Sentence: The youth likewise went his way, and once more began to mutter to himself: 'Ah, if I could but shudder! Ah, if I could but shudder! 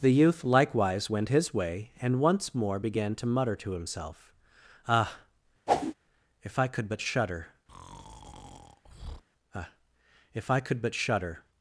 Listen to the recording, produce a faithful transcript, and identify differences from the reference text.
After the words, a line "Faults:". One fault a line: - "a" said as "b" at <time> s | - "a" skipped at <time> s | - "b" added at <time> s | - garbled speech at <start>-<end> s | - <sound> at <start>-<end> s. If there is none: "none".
The youth likewise went his way, and once more began to mutter to himself: 'Ah, if I could but shudder! Ah, if I could but shudder!
Faults:
- whoosh at 5.7-5.9 s
- breath at 7.7-9.2 s